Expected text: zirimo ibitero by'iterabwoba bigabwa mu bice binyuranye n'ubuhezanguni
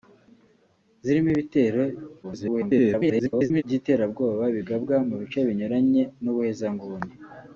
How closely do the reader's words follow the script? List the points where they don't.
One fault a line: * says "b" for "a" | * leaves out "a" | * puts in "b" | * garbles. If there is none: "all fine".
* garbles